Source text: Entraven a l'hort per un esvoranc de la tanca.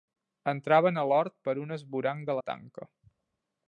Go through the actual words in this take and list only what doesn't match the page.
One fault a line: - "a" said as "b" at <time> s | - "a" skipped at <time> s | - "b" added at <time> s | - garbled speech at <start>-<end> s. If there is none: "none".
none